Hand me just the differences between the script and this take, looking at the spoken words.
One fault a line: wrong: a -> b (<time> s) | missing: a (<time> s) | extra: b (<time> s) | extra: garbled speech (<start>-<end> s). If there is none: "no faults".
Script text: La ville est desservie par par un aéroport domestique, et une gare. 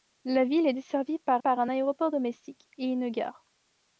no faults